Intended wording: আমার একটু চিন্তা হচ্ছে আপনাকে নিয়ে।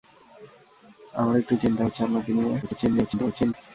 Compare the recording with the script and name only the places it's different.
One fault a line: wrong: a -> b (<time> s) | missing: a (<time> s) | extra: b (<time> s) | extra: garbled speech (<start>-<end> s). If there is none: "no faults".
extra: garbled speech (2.6-3.5 s)